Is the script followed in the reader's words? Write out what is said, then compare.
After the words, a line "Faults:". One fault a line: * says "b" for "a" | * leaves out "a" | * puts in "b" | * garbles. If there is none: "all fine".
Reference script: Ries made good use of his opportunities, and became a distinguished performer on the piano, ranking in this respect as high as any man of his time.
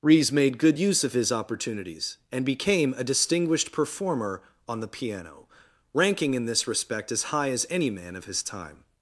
Ries made good use of his opportunities, and became a distinguished performer on the piano, ranking in this respect as high as any man of his time.
Faults:
all fine